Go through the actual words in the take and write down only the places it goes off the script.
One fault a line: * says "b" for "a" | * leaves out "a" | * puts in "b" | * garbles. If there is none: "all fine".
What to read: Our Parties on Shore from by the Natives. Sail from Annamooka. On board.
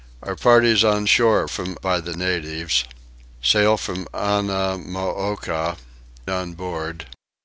all fine